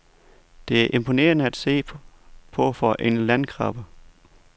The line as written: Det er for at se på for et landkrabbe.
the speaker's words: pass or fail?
fail